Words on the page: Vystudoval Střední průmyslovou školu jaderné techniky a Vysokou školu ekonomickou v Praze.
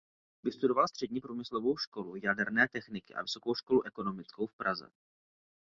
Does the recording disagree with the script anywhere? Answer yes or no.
no